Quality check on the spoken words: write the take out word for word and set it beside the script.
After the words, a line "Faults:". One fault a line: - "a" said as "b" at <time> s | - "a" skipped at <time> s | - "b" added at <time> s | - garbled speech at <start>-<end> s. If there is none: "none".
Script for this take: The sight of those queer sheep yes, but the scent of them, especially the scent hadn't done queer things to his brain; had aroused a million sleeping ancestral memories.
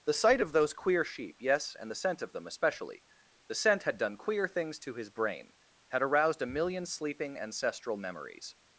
The sight of those queer sheep yes, and the scent of them, especially the scent had done queer things to his brain; had aroused a million sleeping ancestral memories.
Faults:
- "but" said as "and" at 1.8 s
- "hadn't" said as "had" at 3.8 s